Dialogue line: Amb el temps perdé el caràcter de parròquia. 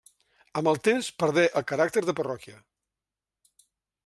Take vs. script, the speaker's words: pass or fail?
pass